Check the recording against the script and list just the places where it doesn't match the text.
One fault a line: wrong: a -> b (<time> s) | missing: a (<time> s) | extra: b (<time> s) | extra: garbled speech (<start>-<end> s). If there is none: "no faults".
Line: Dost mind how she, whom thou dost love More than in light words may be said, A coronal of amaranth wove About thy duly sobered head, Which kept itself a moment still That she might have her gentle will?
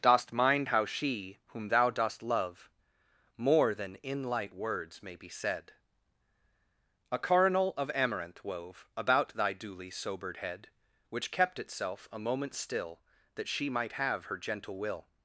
no faults